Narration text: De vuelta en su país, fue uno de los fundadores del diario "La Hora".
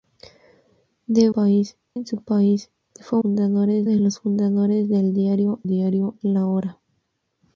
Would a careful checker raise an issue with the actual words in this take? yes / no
yes